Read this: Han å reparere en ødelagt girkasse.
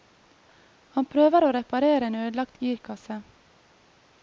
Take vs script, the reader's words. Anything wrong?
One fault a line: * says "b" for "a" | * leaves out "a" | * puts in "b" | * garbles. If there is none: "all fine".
* puts in "prøver"